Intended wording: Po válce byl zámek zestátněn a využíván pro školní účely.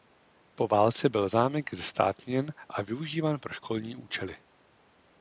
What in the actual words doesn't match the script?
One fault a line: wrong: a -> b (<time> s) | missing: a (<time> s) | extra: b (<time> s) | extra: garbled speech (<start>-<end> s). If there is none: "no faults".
no faults